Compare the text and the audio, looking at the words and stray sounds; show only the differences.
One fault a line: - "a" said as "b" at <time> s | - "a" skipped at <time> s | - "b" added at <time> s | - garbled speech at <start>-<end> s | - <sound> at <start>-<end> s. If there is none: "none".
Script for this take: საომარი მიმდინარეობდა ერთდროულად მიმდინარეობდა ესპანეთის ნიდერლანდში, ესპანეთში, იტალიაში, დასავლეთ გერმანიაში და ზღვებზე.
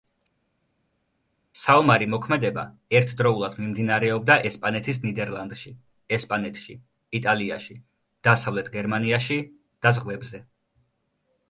- "მიმდინარეობდა" said as "მოქმედება" at 2.1 s